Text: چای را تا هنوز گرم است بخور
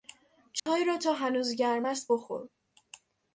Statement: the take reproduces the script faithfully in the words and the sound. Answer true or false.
false